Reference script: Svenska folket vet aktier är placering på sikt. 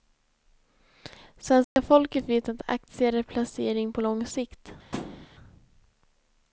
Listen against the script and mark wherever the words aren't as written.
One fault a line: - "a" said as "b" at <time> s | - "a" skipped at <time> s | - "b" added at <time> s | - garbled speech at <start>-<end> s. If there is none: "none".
- "att" added at 2.5 s
- "lång" added at 4.0 s